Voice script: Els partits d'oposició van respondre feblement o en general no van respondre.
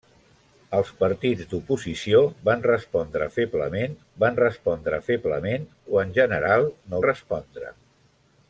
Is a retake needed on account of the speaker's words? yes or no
yes